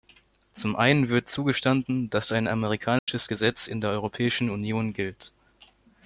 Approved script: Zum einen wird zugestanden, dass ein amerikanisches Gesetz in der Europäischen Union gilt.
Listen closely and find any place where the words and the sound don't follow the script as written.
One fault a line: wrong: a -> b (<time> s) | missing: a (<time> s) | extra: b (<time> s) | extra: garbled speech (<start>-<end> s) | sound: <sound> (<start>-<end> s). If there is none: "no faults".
sound: dropout (3.0-3.1 s)